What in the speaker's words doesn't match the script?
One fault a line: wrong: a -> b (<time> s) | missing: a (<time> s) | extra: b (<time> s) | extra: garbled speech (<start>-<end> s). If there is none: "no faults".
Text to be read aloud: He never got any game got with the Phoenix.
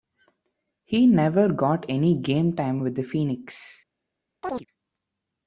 wrong: got -> time (2.5 s)